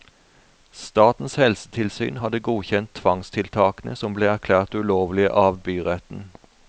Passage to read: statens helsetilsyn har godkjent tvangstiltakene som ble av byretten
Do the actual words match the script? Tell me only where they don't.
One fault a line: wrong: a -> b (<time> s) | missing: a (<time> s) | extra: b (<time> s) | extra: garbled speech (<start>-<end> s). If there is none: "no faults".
wrong: har -> hadde (2.2 s)
extra: erklært ulovlige (4.3 s)